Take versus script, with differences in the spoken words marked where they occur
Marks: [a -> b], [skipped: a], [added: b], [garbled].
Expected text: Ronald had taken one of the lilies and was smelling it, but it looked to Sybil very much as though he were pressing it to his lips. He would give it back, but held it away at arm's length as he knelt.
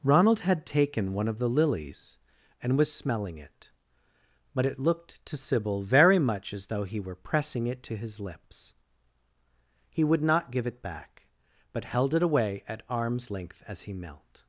Ronald had taken one of the lilies and was smelling it, but it looked to Sybil very much as though he were pressing it to his lips. He would [added: not] give it back, but held it away at arm's length as he knelt.